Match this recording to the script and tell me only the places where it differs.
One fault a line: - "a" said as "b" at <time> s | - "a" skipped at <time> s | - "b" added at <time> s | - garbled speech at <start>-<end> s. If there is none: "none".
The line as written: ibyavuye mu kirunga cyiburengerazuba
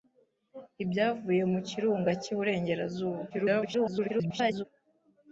- garbled speech at 3.3-4.6 s